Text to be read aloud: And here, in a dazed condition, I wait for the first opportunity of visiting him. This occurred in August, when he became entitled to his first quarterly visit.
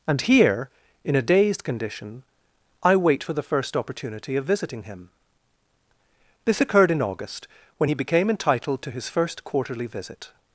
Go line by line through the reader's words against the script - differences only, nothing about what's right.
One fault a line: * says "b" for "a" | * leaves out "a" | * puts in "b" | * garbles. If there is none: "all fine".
all fine